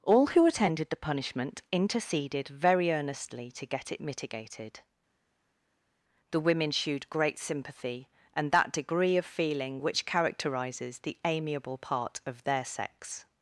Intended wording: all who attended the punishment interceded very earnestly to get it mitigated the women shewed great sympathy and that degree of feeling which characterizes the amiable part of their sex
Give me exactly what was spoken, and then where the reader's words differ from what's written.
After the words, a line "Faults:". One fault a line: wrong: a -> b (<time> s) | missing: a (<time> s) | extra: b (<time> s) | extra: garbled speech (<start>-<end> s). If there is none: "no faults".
all who attended the punishment interceded very earnestly to get it mitigated the women shewed great sympathy and that degree of feeling which characterizes the amiable part of their sex
Faults:
no faults